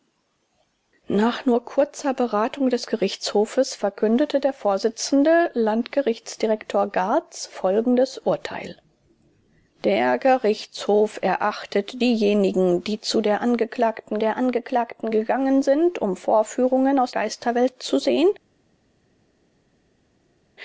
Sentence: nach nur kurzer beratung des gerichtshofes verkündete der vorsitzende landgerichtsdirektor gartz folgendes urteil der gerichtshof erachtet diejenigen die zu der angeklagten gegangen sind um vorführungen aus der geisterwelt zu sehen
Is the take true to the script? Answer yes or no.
no